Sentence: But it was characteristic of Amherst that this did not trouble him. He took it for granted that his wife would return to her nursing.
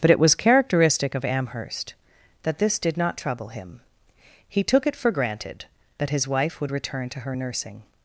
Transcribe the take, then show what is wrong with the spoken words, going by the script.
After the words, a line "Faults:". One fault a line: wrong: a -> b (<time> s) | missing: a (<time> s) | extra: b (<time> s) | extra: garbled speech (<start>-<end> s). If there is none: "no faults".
But it was characteristic of Amherst that this did not trouble him. He took it for granted that his wife would return to her nursing.
Faults:
no faults